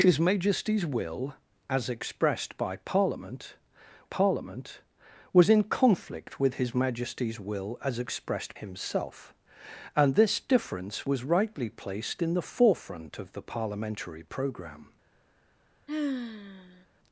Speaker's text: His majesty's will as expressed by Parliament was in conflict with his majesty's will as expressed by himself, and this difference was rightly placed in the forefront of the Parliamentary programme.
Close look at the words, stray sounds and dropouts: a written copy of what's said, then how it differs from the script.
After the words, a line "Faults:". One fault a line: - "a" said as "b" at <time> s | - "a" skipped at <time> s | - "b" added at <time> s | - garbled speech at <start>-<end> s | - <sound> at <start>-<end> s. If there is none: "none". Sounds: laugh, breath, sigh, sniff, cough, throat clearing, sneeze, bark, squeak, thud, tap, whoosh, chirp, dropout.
His majesty's will as expressed by Parliament Parliament was in conflict with his majesty's will as expressed himself, and this difference was rightly placed in the forefront of the Parliamentary programme.
Faults:
- "Parliament" added at 4.0 s
- "by" skipped at 8.6 s
- sigh at 15.9-16.9 s